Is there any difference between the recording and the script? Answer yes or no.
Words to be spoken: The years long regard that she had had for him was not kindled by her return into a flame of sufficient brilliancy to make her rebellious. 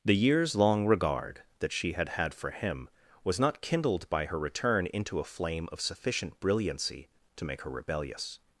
no